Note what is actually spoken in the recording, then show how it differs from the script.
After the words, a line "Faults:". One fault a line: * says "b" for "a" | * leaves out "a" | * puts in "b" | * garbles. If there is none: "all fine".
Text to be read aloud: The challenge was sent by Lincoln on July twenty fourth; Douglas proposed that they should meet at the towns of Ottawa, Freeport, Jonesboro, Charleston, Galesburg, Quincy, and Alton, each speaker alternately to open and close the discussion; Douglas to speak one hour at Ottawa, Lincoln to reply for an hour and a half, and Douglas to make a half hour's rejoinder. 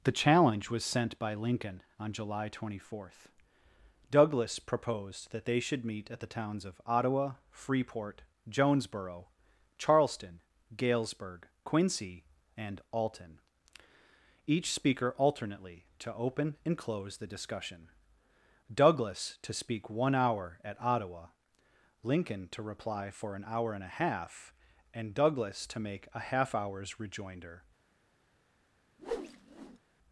The challenge was sent by Lincoln on July twenty fourth; Douglas proposed that they should meet at the towns of Ottawa, Freeport, Jonesboro, Charleston, Galesburg, Quincy, and Alton, each speaker alternately to open and close the discussion; Douglas to speak one hour at Ottawa, Lincoln to reply for an hour and a half, and Douglas to make a half hour's rejoinder.
Faults:
all fine